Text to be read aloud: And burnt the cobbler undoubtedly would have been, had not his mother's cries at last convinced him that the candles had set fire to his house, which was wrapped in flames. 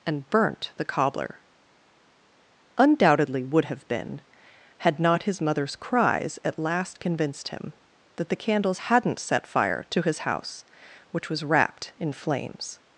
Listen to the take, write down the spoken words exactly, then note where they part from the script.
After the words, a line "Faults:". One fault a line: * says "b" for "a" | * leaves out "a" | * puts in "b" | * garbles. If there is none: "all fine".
And burnt the cobbler undoubtedly would have been, had not his mother's cries at last convinced him that the candles hadn't set fire to his house, which was wrapped in flames.
Faults:
* says "hadn't" for "had"